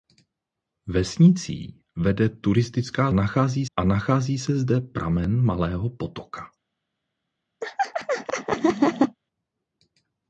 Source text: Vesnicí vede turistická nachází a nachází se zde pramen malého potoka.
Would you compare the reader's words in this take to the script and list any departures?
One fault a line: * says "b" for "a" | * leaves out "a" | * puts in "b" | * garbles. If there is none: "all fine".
all fine